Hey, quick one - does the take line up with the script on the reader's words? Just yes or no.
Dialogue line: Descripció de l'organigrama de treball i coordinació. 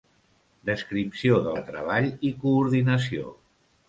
no